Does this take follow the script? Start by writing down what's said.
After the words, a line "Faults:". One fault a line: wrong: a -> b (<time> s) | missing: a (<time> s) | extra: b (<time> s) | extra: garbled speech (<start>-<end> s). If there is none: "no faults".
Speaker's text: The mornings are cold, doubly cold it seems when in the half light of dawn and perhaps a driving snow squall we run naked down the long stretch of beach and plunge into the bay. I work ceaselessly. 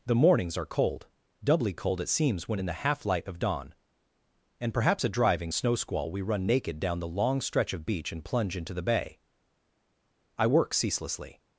The mornings are cold, doubly cold it seems when in the half light of dawn and perhaps a driving snow squall we run naked down the long stretch of beach and plunge into the bay. I work ceaselessly.
Faults:
no faults